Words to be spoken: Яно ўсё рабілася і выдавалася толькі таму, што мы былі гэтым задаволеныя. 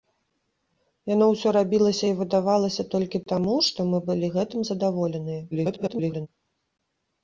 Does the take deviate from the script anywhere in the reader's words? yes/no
yes